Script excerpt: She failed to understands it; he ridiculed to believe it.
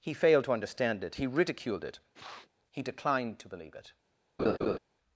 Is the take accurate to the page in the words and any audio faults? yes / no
no